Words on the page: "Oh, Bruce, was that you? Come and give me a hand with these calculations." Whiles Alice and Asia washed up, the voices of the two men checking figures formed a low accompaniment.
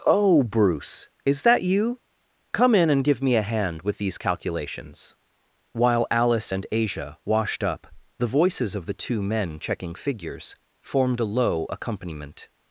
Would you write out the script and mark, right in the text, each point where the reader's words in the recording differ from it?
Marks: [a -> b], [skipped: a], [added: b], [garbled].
"Oh, Bruce, [was -> is] that you? Come [added: in] and give me a hand with these calculations." [Whiles -> While] Alice and Asia washed up, the voices of the two men checking figures formed a low accompaniment.